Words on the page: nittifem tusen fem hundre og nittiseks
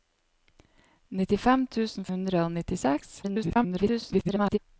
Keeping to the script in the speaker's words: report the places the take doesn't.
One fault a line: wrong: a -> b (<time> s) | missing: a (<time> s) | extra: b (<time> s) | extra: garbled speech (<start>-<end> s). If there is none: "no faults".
missing: fem (2.1 s)
extra: garbled speech (3.2-4.6 s)